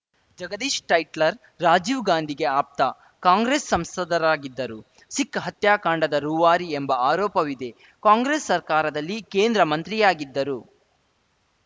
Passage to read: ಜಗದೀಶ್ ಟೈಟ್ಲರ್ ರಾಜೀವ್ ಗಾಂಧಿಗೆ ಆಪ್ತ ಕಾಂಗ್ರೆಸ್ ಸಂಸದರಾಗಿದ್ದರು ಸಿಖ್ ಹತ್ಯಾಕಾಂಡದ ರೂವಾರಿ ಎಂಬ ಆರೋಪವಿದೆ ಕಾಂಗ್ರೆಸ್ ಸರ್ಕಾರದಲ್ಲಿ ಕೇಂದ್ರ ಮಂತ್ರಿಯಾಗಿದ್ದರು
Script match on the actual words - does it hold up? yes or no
yes